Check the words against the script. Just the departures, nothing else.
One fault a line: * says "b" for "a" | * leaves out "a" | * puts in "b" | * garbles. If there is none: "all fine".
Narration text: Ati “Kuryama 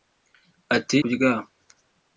all fine